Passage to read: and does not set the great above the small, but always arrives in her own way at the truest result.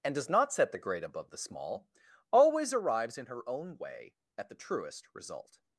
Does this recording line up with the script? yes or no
no